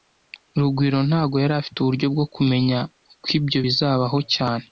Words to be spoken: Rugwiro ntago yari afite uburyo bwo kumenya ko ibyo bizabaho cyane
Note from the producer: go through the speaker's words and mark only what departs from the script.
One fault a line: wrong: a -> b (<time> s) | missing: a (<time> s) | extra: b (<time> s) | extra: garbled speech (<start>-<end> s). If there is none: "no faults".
no faults